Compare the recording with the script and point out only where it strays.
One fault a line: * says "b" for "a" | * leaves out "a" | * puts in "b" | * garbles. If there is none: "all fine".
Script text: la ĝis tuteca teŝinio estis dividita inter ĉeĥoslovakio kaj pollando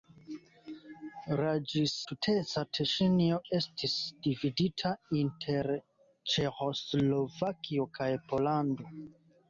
all fine